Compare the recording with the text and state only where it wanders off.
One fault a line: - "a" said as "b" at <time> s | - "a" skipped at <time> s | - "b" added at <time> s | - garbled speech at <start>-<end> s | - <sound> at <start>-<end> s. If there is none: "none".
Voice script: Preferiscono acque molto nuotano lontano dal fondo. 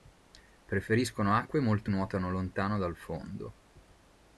none